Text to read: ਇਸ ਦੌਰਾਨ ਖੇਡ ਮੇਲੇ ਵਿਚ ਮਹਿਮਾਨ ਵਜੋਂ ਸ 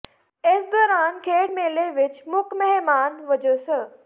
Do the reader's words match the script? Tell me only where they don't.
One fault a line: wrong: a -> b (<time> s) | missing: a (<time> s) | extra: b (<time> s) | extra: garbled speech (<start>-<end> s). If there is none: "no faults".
extra: ਮੁੱਖ (2.3 s)